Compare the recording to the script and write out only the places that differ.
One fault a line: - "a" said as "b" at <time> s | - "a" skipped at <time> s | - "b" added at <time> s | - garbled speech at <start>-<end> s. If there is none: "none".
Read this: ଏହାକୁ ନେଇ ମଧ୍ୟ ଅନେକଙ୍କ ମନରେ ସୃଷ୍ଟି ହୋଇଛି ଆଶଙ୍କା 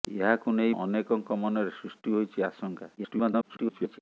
- "ମଧ୍ୟ" skipped at 0.7 s
- garbled speech at 3.0-4.0 s